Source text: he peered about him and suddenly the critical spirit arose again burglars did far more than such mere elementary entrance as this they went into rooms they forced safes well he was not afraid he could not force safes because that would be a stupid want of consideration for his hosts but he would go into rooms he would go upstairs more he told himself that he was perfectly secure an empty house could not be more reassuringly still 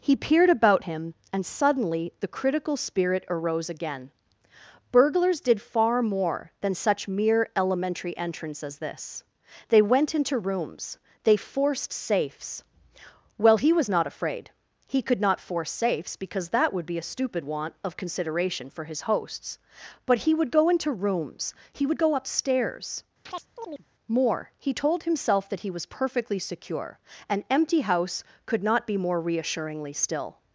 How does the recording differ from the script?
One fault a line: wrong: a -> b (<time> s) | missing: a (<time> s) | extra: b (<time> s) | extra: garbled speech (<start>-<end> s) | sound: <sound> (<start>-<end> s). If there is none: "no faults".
sound: chirp (23.3-23.9 s)